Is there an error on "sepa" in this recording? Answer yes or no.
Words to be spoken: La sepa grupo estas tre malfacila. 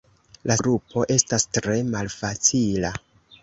yes